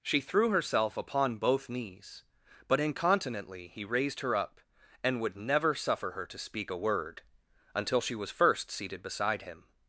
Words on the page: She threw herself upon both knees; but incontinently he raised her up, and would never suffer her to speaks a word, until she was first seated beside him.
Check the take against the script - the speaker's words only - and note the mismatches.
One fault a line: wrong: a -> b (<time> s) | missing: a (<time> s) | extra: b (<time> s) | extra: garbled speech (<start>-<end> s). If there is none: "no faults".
wrong: speaks -> speak (6.4 s)